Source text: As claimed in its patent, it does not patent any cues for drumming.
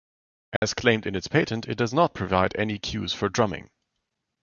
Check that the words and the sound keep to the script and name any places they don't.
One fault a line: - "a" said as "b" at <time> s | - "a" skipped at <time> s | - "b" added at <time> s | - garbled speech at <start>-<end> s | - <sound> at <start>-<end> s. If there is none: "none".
- dropout at 0.6-0.6 s
- "patent" said as "provide" at 2.1 s